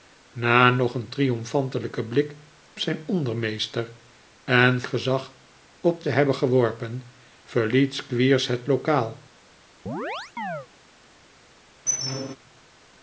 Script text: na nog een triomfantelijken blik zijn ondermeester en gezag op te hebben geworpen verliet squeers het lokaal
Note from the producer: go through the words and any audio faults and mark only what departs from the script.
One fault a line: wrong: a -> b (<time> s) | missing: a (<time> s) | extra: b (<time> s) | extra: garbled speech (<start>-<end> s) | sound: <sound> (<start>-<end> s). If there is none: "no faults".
sound: chirp (9.9-10.7 s)
sound: squeak (11.9-12.4 s)